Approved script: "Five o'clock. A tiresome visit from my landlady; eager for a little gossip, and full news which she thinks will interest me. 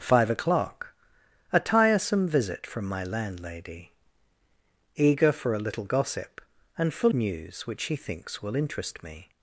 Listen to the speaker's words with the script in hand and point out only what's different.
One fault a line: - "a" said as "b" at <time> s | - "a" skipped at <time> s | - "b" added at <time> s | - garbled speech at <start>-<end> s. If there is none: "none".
none